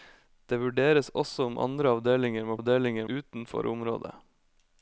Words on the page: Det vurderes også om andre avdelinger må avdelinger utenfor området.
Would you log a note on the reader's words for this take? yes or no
no